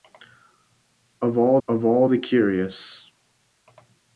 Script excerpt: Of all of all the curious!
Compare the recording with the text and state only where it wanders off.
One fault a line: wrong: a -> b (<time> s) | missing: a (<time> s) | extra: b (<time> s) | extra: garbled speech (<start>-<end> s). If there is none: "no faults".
no faults